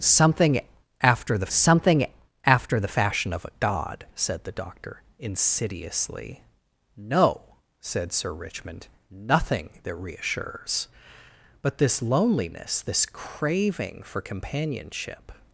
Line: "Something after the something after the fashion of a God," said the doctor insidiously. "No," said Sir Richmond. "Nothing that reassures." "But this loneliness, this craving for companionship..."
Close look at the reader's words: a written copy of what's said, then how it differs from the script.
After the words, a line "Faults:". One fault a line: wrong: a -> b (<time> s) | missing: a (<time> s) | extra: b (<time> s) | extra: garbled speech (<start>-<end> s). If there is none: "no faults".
"Something after the something after the fashion of a God," said the doctor insidiously. "No," said Sir Richmond. "Nothing that reassures." "But this loneliness, this craving for companionship..."
Faults:
no faults